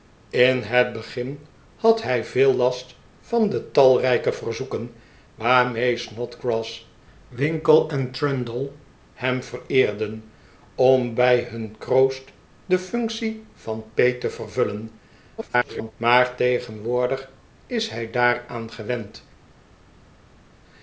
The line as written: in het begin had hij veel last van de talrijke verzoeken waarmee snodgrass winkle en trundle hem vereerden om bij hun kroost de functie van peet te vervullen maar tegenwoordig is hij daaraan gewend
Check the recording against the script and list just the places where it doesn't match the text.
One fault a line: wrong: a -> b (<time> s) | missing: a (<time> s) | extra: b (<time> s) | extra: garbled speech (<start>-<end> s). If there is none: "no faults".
extra: garbled speech (15.4-15.9 s)